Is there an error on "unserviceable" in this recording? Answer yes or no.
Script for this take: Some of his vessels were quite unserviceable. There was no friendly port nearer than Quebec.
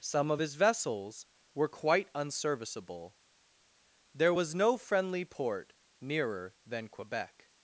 no